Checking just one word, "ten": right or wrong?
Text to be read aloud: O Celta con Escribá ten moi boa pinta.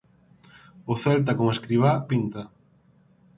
wrong